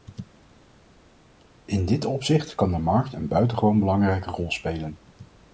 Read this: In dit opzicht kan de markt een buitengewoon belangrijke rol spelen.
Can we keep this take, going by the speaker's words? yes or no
yes